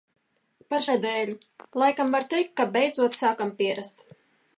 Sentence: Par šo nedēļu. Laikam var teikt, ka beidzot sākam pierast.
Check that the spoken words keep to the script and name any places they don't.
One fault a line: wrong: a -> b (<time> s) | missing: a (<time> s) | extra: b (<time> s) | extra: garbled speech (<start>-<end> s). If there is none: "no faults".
missing: šo (0.8 s)